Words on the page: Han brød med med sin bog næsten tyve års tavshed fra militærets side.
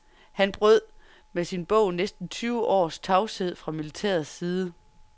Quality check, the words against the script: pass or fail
fail